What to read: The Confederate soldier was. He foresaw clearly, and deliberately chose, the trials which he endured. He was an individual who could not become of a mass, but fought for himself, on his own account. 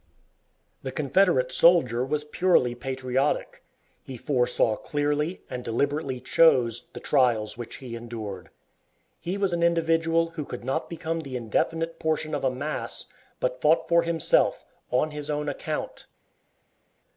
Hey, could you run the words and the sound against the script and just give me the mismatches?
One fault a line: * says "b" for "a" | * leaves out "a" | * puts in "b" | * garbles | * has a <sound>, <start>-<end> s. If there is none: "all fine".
* puts in "purely patriotic"
* puts in "the indefinite portion"